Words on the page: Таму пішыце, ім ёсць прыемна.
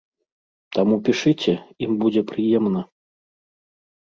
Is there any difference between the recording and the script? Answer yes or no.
yes